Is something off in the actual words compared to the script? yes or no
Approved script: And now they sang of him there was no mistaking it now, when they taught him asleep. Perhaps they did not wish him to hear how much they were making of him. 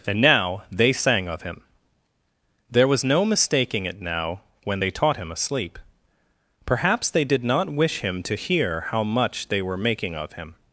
no